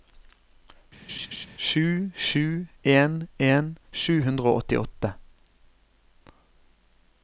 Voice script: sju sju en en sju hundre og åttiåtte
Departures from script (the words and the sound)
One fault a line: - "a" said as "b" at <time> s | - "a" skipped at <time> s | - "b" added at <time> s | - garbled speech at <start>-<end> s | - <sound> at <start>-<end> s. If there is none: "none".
- laugh at 1.1-1.5 s